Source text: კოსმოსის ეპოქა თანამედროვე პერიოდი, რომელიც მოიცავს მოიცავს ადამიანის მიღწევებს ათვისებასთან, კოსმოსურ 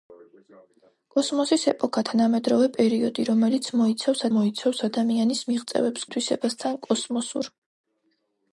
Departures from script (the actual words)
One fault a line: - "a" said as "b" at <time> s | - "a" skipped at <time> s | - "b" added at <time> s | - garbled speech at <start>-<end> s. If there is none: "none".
none